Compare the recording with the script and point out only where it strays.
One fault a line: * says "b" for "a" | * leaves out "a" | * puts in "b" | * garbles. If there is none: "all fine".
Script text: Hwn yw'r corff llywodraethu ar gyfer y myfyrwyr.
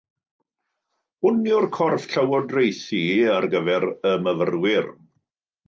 all fine